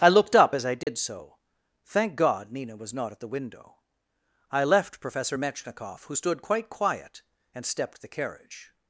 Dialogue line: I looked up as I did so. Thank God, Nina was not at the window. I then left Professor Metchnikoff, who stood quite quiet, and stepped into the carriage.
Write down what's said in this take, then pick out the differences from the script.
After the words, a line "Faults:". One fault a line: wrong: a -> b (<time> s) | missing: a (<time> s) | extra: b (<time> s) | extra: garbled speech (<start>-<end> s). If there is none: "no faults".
I looked up as I did so. Thank God, Nina was not at the window. I left Professor Metchnikoff, who stood quite quiet, and stepped the carriage.
Faults:
missing: then (4.6 s)
missing: into (8.0 s)